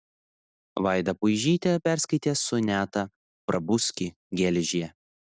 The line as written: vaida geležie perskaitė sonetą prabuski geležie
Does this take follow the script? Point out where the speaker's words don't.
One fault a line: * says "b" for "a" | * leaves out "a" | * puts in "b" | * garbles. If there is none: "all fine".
* says "puižytė" for "geležie"